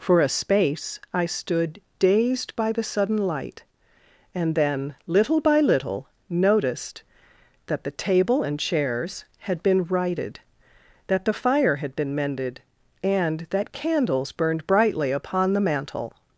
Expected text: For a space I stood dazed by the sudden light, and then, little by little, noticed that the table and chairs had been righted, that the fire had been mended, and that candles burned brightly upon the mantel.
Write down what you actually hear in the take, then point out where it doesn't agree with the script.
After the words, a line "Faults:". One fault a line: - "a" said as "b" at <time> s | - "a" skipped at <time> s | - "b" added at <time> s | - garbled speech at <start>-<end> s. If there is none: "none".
For a space I stood dazed by the sudden light, and then, little by little, noticed that the table and chairs had been righted, that the fire had been mended, and that candles burned brightly upon the mantel.
Faults:
none